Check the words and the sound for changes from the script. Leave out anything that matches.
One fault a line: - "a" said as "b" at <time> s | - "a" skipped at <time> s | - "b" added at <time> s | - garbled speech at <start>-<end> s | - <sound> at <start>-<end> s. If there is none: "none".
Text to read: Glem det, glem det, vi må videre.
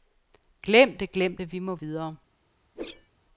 - whoosh at 2.7-3.1 s